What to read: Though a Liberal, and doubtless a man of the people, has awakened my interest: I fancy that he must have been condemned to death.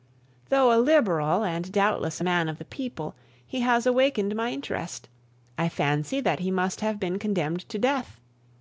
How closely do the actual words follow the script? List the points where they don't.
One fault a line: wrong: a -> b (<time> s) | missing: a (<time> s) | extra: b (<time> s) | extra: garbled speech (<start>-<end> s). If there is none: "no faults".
extra: he (3.5 s)